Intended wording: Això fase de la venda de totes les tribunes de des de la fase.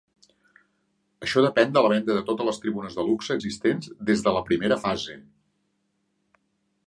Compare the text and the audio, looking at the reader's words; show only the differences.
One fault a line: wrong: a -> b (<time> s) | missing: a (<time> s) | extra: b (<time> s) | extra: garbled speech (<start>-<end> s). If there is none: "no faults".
wrong: fase -> depèn (1.4 s)
extra: luxe existents (3.1 s)
extra: primera (4.5 s)